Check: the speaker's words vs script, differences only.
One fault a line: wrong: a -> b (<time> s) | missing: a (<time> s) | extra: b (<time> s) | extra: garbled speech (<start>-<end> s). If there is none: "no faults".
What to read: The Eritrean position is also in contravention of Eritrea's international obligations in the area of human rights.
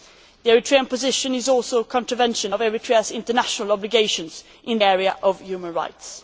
missing: the (4.8 s)